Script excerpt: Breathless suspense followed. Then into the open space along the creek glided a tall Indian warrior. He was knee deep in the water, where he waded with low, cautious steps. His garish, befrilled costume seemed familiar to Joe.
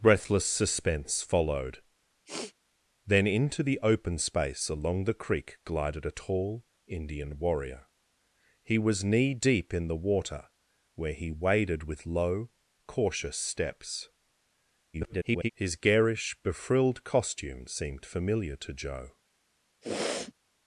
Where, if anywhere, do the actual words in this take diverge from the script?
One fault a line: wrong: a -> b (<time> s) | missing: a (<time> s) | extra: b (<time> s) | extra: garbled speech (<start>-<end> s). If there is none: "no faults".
extra: garbled speech (14.9-15.5 s)